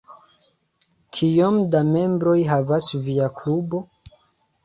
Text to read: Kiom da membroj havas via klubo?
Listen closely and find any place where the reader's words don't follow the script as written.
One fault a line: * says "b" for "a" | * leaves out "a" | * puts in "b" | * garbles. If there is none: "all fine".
all fine